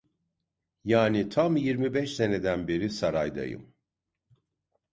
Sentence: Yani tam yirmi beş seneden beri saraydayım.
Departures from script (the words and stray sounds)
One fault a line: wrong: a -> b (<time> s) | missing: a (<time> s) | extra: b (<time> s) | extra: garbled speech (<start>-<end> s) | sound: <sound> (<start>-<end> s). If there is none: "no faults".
no faults